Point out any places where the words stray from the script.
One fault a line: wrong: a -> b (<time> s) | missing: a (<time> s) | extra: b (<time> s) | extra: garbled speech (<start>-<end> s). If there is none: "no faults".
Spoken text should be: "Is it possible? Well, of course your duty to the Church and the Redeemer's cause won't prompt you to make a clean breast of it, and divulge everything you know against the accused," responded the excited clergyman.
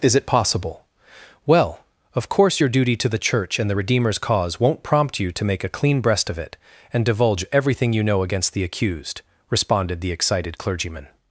no faults